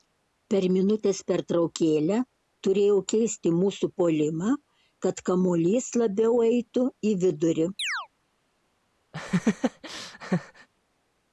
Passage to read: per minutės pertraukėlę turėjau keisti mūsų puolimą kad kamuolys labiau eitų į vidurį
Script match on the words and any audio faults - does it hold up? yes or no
no